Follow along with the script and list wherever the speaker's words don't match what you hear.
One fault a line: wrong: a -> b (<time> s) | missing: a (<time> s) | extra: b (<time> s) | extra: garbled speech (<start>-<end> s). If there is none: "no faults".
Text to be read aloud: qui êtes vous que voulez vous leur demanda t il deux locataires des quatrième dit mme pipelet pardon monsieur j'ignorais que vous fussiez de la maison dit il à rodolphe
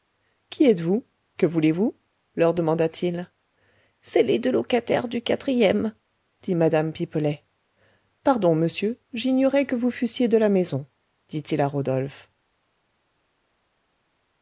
extra: c'est les (4.0 s)
wrong: des -> du (5.1 s)